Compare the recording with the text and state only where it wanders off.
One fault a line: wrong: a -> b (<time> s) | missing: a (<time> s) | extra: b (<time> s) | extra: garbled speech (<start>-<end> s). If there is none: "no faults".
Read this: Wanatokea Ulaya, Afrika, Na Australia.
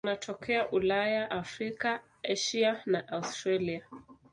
extra: Asia (2.2 s)